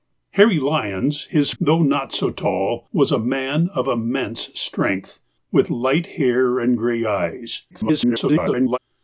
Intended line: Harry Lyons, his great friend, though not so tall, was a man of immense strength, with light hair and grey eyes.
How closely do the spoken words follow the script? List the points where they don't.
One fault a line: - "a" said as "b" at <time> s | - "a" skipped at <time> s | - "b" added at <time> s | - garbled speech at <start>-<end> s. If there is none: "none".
- "great friend" skipped at 1.5 s
- garbled speech at 7.7-8.8 s